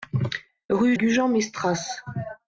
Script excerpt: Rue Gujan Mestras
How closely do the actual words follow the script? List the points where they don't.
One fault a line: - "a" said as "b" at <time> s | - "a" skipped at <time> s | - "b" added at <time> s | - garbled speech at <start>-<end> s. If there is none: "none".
none